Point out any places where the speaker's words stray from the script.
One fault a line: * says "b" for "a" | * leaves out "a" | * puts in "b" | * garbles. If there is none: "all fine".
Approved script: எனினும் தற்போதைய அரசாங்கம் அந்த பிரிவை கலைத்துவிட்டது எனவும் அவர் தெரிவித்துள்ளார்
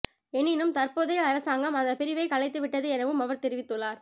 all fine